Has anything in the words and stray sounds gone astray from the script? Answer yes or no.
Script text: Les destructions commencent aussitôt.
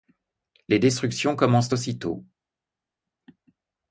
no